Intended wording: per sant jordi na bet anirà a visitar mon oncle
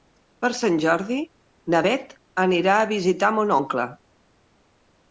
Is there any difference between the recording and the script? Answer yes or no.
no